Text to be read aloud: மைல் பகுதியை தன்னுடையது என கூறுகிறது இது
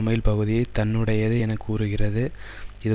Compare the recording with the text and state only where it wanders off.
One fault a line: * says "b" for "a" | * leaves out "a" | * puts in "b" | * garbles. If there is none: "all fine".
all fine